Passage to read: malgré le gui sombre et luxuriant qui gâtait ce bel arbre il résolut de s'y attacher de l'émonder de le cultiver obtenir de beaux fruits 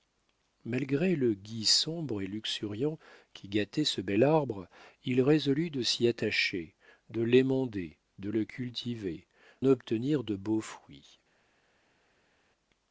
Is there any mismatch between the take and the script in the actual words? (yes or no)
no